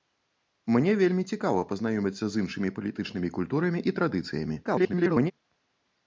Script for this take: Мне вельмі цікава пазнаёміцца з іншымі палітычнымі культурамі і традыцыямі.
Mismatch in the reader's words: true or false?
true